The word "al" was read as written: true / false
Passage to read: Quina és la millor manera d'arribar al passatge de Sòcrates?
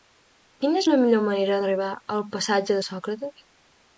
true